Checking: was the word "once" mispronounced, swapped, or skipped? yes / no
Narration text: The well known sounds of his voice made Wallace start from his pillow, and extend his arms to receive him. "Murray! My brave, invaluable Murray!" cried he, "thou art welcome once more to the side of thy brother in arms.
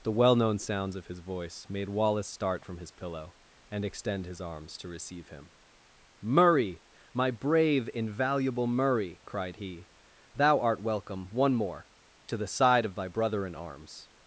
yes